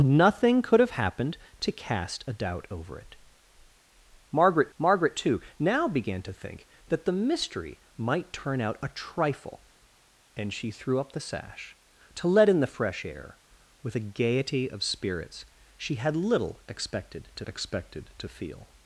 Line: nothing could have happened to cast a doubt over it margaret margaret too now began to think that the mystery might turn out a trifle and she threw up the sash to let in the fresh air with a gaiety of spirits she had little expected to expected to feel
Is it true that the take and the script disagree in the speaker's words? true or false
false